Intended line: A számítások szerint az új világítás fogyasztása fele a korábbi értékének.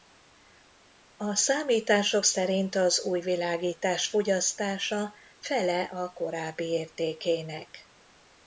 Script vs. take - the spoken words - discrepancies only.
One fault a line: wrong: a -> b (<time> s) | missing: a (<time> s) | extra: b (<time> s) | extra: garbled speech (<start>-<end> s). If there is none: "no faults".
no faults